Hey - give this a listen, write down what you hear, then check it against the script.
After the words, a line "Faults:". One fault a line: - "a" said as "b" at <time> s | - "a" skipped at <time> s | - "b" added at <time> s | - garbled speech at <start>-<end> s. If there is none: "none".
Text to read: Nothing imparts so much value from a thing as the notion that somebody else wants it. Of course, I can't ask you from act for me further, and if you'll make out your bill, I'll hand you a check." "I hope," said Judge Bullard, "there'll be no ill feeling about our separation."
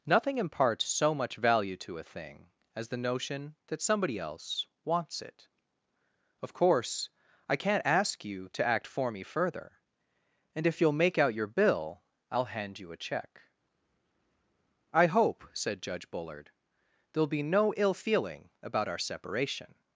Nothing imparts so much value to a thing as the notion that somebody else wants it. Of course, I can't ask you to act for me further, and if you'll make out your bill, I'll hand you a check." "I hope," said Judge Bullard, "there'll be no ill feeling about our separation."
Faults:
- "from" said as "to" at 1.8 s
- "from" said as "to" at 8.5 s